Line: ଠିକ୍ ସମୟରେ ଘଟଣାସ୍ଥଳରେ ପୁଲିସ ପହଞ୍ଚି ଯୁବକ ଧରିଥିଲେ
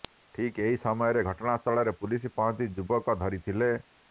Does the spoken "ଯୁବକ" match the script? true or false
true